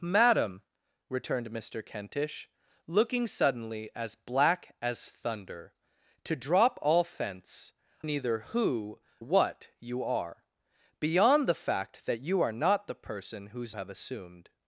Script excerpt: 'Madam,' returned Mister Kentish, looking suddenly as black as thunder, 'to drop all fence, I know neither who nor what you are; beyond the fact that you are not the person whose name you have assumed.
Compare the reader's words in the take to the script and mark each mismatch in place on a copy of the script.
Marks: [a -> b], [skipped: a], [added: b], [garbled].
'Madam,' returned Mister Kentish, looking suddenly as black as thunder, 'to drop all fence, [skipped: I know] neither who [skipped: nor] what you are; beyond the fact that you are not the person whose [skipped: name you] have assumed.